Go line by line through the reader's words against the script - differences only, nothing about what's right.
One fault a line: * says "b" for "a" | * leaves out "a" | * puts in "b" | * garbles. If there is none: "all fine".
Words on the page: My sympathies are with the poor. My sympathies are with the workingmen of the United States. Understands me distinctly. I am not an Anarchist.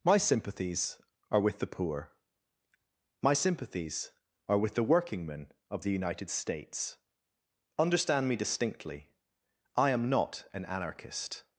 * says "Understand" for "Understands"